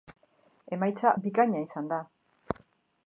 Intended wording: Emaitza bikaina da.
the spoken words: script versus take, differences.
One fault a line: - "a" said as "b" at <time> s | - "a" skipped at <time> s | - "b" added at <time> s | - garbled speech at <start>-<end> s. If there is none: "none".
- "izan" added at 1.7 s